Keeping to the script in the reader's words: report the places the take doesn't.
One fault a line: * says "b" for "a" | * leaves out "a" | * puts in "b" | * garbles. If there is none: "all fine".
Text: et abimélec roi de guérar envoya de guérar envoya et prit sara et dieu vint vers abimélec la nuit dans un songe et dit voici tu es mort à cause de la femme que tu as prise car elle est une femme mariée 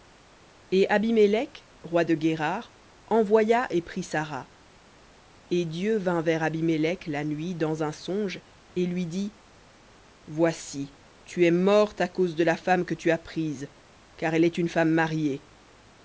* leaves out "de guérar envoya"
* puts in "lui"